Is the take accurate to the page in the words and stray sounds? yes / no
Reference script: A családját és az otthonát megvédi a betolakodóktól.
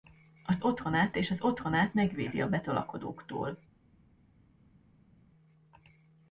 no